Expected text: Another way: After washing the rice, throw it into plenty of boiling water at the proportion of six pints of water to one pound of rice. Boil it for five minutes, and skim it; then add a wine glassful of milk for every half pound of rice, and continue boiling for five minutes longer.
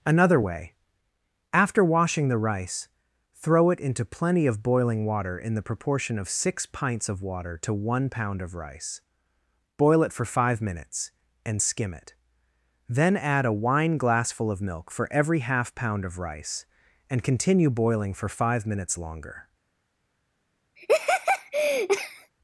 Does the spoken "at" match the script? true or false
false